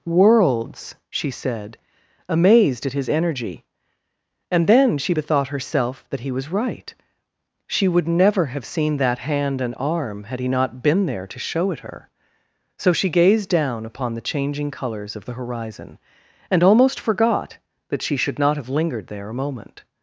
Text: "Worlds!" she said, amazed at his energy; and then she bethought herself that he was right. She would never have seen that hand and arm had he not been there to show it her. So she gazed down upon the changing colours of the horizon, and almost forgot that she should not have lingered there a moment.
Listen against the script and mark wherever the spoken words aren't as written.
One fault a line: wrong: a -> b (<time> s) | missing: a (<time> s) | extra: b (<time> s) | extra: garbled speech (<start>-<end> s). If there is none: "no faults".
no faults